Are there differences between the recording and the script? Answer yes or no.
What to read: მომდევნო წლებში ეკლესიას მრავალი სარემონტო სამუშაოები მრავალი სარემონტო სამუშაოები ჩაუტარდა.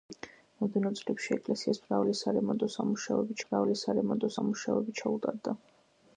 no